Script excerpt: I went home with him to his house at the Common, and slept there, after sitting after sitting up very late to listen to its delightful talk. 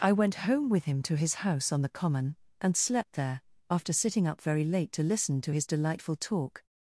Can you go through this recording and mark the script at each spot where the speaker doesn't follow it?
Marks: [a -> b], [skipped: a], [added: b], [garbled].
I went home with him to his house [at -> on] the Common, and slept there, after sitting [skipped: after sitting] up very late to listen to [its -> his] delightful talk.